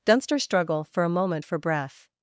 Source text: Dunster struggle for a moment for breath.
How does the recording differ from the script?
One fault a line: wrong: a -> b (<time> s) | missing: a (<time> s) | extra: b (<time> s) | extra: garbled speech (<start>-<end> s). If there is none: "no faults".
no faults